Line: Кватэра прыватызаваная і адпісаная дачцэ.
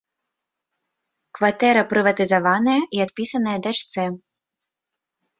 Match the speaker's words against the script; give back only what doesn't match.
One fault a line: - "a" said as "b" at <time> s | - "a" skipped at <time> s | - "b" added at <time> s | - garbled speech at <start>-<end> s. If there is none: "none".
none